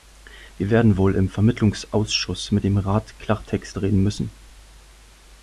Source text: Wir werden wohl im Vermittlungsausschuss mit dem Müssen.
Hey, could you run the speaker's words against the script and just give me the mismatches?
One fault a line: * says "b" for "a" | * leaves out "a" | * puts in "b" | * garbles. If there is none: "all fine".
* puts in "Rat Klartext reden"